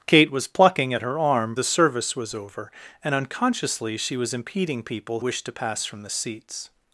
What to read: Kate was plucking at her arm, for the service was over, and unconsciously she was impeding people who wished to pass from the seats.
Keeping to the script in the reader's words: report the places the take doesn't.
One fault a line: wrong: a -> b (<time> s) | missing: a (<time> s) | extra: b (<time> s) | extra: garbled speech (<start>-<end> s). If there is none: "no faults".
missing: for (1.6 s)
missing: who (5.2 s)